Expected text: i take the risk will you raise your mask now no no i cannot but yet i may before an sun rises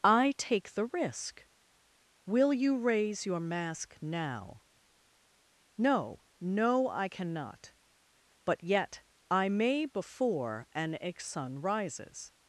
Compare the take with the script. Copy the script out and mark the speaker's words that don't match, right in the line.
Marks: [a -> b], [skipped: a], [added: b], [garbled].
i take the risk will you raise your mask now no no i cannot but yet i may before an sun rises